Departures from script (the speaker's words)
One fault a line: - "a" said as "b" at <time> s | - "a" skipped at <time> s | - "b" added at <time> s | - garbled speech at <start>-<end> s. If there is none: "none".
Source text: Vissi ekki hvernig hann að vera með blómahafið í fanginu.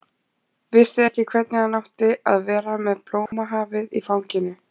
- "átti" added at 1.8 s